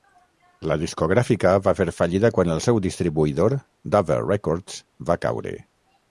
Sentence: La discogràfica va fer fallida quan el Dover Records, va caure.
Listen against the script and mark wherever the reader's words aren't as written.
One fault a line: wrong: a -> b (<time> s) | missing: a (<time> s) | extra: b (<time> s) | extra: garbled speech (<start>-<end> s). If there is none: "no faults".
extra: seu distribuïdor (2.7 s)